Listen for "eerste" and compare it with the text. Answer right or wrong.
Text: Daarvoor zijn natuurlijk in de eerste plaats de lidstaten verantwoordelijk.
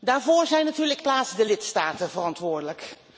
wrong